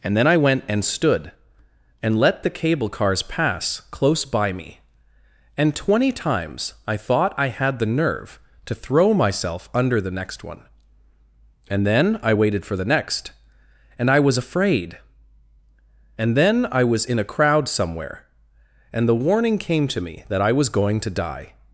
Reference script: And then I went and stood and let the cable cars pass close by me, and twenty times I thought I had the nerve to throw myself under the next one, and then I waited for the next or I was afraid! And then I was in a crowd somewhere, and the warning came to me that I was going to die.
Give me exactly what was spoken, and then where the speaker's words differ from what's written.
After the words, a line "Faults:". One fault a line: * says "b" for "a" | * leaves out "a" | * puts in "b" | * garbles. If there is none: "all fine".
And then I went and stood and let the cable cars pass close by me, and twenty times I thought I had the nerve to throw myself under the next one, and then I waited for the next and I was afraid! And then I was in a crowd somewhere, and the warning came to me that I was going to die.
Faults:
* says "and" for "or"